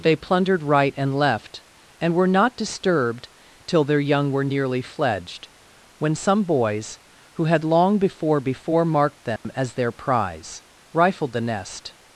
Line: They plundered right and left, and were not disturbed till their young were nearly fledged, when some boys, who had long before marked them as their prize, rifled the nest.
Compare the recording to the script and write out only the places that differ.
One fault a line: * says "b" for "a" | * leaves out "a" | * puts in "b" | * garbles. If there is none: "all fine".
* puts in "before"